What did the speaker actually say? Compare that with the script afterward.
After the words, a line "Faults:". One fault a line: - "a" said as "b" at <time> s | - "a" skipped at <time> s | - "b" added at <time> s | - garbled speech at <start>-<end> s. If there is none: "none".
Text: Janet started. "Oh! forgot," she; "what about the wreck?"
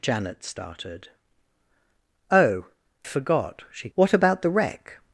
Janet started. "Oh! forgot," she; "what about the wreck?"
Faults:
none